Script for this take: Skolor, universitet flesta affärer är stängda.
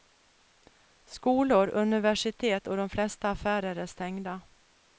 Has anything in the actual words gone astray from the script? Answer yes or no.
yes